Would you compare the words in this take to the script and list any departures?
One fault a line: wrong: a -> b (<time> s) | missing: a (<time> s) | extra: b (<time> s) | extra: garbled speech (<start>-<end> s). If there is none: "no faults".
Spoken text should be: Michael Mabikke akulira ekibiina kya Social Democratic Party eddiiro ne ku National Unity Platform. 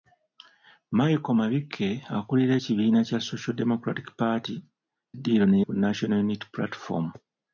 no faults